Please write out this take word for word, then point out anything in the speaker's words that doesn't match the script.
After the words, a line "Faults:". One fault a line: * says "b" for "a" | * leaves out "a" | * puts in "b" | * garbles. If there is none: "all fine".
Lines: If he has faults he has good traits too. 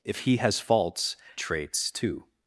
If he has faults traits too.
Faults:
* leaves out "he has good"